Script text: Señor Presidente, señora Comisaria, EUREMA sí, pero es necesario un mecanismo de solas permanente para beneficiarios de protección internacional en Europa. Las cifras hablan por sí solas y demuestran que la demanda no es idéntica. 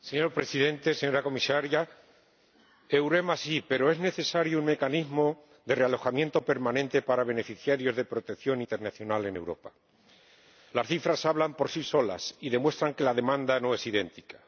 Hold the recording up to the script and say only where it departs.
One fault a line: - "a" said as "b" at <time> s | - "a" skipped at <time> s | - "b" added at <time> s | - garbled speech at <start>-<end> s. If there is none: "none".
- "solas" said as "realojamiento" at 5.8 s